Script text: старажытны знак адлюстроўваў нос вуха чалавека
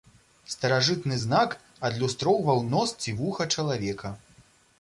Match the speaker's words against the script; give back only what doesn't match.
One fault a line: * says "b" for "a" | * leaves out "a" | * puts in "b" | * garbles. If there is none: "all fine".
* puts in "ці"